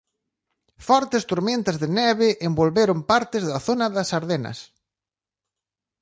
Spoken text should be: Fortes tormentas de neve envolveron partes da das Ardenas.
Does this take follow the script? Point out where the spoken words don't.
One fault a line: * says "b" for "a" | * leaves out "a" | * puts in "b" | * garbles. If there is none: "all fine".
* puts in "zona"